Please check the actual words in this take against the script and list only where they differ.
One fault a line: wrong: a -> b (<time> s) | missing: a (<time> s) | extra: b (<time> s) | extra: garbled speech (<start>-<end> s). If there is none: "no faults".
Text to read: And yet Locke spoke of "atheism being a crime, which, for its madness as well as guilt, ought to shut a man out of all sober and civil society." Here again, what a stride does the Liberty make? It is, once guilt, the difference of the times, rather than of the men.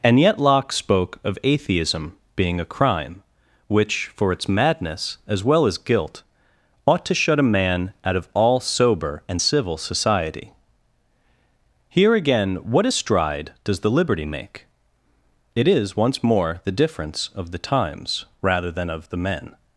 wrong: guilt -> more (16.2 s)